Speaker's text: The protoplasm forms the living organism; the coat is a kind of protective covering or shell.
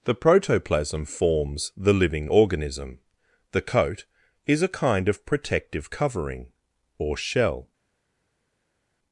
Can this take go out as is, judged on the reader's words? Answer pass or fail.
pass